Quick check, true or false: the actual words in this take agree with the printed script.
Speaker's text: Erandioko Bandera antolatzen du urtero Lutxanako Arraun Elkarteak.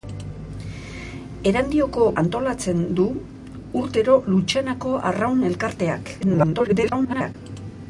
false